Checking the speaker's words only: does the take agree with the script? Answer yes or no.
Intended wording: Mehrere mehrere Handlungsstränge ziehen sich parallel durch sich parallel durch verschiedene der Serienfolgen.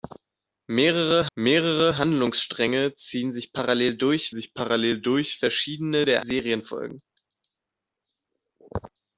yes